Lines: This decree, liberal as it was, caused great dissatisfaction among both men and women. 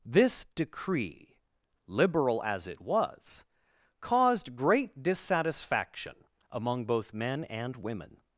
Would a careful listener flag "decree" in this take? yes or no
no